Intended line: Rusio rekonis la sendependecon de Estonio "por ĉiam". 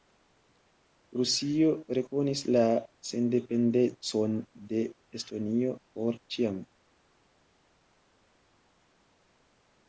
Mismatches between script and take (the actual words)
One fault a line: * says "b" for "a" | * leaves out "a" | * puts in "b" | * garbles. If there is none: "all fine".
all fine